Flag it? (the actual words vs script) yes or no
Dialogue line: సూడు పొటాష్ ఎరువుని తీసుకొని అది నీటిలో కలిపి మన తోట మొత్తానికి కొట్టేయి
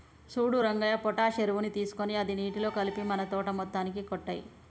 yes